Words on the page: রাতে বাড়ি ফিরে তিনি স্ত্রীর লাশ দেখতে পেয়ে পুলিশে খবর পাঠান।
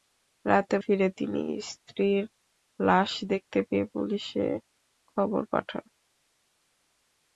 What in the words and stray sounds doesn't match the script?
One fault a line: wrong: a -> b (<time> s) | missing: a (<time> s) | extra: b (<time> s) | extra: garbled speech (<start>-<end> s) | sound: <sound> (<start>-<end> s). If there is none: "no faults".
missing: বাড়ি (0.8 s)